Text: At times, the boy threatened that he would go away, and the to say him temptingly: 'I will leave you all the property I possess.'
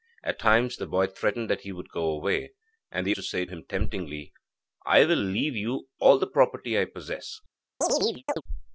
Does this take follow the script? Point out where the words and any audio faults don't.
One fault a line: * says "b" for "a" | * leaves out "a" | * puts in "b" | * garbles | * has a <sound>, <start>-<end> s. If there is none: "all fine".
* has a chirp, 7.8-8.4 s